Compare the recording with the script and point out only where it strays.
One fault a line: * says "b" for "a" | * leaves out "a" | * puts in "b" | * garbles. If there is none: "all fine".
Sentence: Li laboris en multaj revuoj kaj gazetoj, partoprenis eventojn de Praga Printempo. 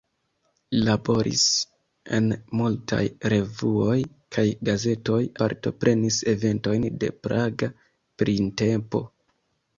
all fine